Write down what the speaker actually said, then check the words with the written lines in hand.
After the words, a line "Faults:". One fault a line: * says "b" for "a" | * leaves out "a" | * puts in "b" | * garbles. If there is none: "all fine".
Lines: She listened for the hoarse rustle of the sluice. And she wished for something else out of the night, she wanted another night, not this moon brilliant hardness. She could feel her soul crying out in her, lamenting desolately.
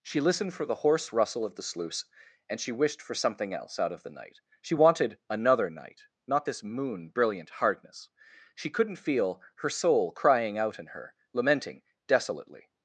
She listened for the hoarse rustle of the sluice. And she wished for something else out of the night, she wanted another night, not this moon brilliant hardness. She couldn't feel her soul crying out in her, lamenting desolately.
Faults:
* says "couldn't" for "could"